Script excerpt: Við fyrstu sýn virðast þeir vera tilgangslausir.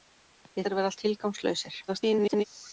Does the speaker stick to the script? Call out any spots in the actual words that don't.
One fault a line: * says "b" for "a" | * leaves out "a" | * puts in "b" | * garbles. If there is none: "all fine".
* leaves out "fyrstu sýn virðast"
* garbles